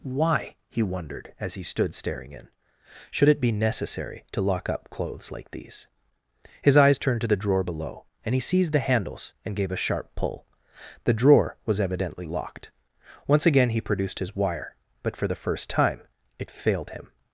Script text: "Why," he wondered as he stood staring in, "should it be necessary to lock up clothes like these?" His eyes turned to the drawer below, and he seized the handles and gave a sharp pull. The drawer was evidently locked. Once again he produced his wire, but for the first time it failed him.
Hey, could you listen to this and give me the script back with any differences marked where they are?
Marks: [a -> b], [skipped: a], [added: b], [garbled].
"Why," he wondered as he stood staring in, "should it be necessary to lock up clothes like these?" His eyes turned to the drawer below, and he seized the handles and gave a sharp pull. The drawer was evidently locked. Once again he produced his wire, but for the first time it failed him.